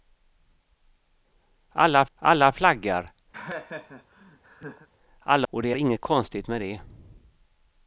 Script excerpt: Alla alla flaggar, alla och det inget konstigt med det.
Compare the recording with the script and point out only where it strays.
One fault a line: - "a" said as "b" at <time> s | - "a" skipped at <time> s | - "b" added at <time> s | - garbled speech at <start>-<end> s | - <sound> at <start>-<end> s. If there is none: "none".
- laugh at 3.3-4.9 s